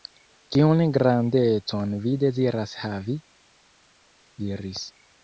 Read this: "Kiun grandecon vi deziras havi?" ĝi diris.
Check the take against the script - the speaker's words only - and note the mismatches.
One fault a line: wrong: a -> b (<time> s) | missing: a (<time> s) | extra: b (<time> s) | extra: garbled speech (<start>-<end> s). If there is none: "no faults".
missing: ĝi (3.2 s)